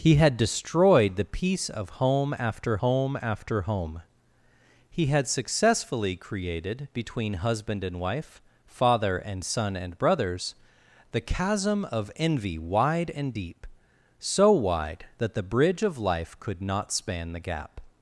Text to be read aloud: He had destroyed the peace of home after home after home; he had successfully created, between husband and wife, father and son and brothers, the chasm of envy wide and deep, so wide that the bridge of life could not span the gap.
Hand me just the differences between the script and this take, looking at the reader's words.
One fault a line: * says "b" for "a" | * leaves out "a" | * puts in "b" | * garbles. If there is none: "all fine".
all fine